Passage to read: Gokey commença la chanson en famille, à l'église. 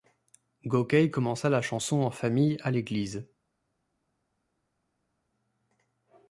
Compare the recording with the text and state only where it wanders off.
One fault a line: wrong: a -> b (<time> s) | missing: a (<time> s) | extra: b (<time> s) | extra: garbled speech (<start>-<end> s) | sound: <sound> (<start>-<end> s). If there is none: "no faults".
no faults